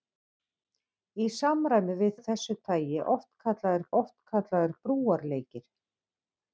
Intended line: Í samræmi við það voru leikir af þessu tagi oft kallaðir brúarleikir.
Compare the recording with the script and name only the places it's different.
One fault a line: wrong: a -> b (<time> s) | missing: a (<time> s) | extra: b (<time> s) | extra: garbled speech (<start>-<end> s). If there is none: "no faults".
missing: það voru leikir (2.1 s)
extra: oft kallaðir (4.0 s)